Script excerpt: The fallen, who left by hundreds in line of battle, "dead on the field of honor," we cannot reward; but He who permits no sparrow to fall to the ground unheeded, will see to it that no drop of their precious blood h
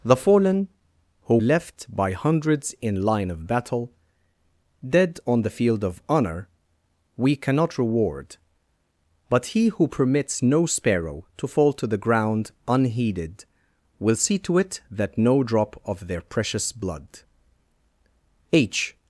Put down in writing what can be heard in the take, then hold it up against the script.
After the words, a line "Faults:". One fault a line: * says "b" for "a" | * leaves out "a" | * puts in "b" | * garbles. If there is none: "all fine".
The fallen, who left by hundreds in line of battle, "dead on the field of honor," we cannot reward; but He who permits no sparrow to fall to the ground unheeded, will see to it that no drop of their precious blood h
Faults:
all fine